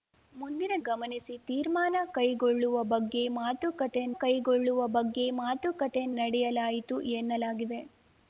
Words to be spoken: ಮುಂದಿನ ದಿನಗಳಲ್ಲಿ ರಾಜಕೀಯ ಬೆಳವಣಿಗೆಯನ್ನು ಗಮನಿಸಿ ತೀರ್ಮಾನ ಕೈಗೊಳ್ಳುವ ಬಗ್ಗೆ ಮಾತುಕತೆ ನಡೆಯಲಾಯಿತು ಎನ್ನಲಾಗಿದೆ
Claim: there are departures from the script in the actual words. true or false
true